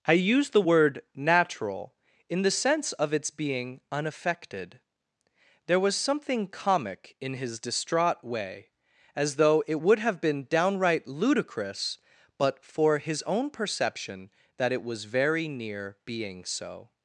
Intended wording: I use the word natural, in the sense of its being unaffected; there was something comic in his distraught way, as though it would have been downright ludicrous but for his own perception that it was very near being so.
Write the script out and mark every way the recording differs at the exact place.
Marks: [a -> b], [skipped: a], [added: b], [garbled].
I use the word natural, in the sense of its being unaffected; there was something comic in his distraught way, as though it would have been downright ludicrous but for his own perception that it was very near being so.